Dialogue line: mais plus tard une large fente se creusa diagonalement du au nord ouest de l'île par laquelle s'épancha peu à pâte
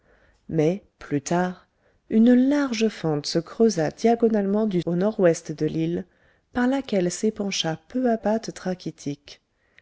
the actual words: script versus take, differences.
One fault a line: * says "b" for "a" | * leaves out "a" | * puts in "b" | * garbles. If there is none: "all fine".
all fine